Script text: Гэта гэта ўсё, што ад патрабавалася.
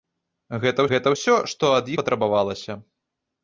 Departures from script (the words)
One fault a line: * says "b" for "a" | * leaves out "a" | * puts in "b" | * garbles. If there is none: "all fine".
all fine